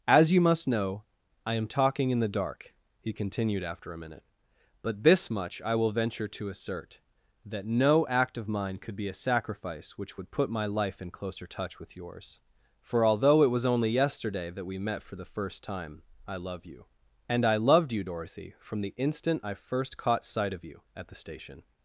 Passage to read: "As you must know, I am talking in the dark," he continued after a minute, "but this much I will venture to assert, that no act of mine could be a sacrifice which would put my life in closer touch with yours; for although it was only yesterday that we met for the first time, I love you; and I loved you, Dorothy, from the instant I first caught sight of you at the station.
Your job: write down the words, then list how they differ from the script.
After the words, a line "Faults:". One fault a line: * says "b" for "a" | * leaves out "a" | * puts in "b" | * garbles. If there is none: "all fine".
"As you must know, I am talking in the dark," he continued after a minute, "but this much I will venture to assert, that no act of mine could be a sacrifice which would put my life in closer touch with yours; for although it was only yesterday that we met for the first time, I love you; and I loved you, Dorothy, from the instant I first caught sight of you at the station.
Faults:
all fine